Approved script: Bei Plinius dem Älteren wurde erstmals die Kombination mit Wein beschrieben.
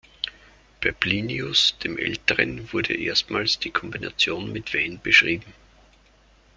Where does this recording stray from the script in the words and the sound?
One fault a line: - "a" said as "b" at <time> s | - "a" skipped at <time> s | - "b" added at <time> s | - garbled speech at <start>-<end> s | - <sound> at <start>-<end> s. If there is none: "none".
none